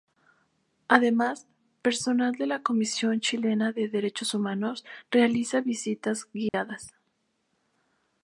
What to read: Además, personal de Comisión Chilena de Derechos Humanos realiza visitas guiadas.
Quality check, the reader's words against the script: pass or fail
fail